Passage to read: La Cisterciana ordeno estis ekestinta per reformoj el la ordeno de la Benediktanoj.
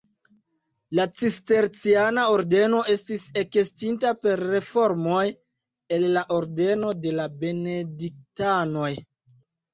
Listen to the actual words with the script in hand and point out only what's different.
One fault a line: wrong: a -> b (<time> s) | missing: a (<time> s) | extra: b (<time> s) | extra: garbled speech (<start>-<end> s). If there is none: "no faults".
no faults